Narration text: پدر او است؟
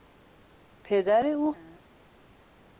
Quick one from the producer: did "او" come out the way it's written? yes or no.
yes